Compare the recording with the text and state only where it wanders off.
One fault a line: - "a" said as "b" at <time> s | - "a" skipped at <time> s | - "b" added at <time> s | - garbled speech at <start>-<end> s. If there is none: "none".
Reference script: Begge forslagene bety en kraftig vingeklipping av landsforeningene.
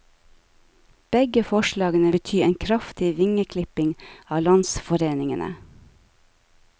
none